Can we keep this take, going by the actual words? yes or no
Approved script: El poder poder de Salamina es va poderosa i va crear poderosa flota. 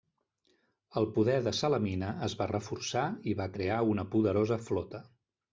no